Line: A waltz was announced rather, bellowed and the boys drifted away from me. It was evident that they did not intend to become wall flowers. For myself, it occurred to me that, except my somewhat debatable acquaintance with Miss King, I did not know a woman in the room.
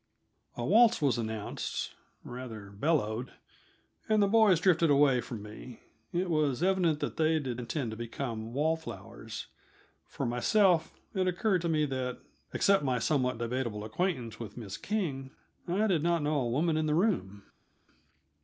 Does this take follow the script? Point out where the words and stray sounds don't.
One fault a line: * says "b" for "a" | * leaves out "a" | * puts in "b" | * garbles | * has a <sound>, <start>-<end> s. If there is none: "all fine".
* leaves out "not"